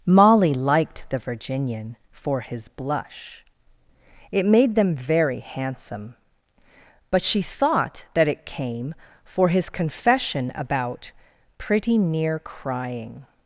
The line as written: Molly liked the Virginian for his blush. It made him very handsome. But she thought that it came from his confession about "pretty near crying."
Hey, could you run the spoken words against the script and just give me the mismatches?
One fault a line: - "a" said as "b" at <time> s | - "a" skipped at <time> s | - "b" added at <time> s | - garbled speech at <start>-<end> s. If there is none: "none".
- "him" said as "them" at 4.8 s
- "from" said as "for" at 9.2 s